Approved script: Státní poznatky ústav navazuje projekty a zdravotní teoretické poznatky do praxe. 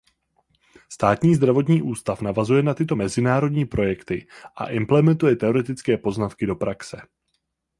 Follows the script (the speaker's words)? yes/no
no